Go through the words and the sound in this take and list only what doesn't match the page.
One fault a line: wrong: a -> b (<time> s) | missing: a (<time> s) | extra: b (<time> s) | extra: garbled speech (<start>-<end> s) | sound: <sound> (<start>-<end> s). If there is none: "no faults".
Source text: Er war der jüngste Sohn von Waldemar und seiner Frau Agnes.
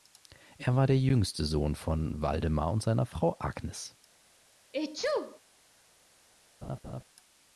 sound: sneeze (4.7-5.4 s)
sound: laugh (6.6-7.0 s)